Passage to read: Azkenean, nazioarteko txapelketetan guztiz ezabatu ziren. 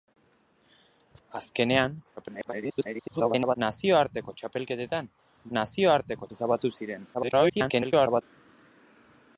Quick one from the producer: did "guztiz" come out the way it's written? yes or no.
no